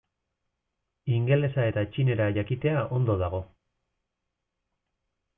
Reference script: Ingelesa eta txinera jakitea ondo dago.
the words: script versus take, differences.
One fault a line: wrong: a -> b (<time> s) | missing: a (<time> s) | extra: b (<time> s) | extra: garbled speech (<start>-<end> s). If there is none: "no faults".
no faults